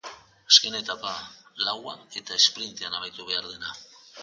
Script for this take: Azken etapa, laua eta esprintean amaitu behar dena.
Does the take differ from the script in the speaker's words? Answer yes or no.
no